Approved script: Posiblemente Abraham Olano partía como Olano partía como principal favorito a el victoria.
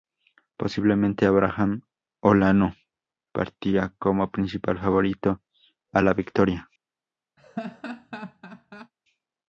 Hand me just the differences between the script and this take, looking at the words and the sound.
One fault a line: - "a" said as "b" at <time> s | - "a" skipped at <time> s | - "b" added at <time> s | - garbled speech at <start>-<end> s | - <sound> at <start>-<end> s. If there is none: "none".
- "Olano partía como" skipped at 4.3 s
- "el" said as "la" at 6.0 s
- laugh at 7.4-8.9 s